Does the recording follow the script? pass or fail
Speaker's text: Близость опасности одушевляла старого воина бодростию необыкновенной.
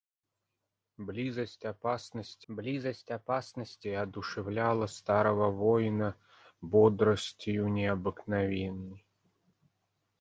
fail